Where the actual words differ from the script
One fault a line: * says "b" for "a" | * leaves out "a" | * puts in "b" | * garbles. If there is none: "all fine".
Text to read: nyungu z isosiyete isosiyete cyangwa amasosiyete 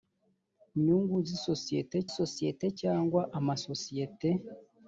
all fine